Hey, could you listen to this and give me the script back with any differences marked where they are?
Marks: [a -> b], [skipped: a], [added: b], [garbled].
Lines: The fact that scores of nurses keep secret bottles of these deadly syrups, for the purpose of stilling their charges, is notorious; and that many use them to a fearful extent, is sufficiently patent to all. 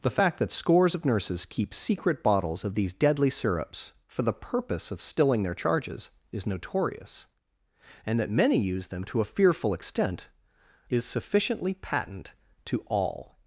The fact that scores of nurses keep secret bottles of these deadly syrups, for the purpose of stilling their charges, is notorious; and that many use them to a fearful extent, is sufficiently patent to all.